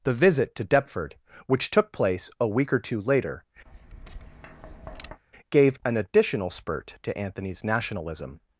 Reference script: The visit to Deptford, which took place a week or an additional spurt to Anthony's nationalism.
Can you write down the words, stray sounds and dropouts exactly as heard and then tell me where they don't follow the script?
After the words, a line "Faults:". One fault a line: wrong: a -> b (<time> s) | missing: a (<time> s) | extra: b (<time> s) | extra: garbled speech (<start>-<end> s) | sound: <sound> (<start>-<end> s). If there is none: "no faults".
The visit to Deptford, which took place a week or two later, gave an additional spurt to Anthony's nationalism.
Faults:
extra: two later gave (2.8 s)
sound: tap (3.7-5.2 s)